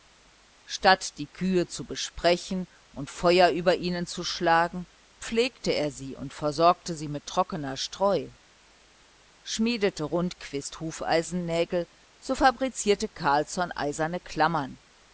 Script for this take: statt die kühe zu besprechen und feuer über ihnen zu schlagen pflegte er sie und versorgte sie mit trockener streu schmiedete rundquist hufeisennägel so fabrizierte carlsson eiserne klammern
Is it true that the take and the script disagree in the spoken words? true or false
false